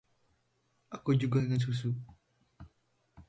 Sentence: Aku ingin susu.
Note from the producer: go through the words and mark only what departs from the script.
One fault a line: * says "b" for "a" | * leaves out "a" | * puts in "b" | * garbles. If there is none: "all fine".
* puts in "juga"